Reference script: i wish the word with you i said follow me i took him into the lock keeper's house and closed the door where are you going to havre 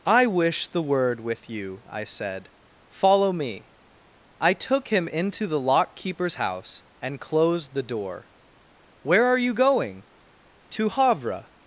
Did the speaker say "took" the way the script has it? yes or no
yes